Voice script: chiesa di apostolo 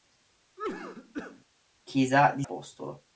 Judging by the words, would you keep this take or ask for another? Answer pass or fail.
pass